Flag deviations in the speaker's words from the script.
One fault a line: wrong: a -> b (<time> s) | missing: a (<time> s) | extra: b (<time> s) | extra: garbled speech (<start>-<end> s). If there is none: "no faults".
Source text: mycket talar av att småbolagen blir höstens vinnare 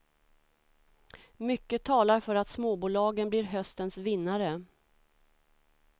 wrong: av -> för (2.2 s)